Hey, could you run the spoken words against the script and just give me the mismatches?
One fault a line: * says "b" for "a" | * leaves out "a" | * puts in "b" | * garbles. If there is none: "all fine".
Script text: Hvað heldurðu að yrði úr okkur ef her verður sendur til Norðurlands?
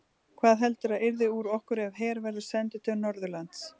all fine